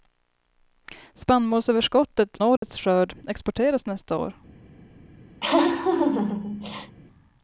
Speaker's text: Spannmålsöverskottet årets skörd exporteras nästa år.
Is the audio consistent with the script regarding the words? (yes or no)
yes